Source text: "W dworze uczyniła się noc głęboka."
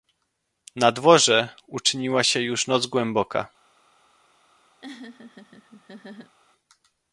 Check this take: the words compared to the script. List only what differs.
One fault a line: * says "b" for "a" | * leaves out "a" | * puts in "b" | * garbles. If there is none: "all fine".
* says "Na" for "W"
* puts in "już"